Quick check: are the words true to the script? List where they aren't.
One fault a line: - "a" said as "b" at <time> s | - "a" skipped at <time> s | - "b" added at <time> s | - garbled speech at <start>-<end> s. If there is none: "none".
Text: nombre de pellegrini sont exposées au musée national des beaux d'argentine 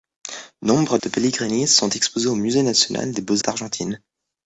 none